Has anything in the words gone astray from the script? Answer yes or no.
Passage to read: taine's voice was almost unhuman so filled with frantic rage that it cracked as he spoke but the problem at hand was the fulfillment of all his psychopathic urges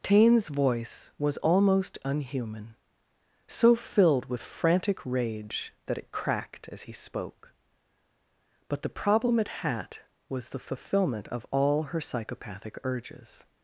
yes